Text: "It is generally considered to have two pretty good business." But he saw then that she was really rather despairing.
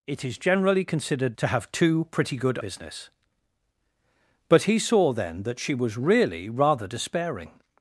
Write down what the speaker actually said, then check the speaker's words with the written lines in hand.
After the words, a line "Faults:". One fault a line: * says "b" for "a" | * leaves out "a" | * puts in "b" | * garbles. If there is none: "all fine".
"It is generally considered to have two pretty good business." But he saw then that she was really rather despairing.
Faults:
all fine